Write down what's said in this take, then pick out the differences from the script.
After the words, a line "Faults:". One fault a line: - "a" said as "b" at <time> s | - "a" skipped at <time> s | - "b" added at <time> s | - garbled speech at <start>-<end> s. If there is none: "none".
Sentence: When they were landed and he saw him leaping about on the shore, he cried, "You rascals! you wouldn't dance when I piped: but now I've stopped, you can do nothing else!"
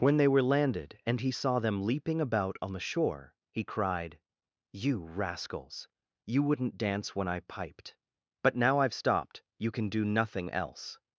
When they were landed and he saw them leaping about on the shore, he cried, "You rascals! you wouldn't dance when I piped: but now I've stopped, you can do nothing else!"
Faults:
- "him" said as "them" at 1.6 s